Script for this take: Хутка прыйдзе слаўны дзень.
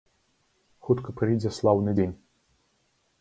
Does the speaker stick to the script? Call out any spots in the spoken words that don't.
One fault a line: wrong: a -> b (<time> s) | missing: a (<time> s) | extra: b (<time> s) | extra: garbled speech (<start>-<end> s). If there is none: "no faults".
no faults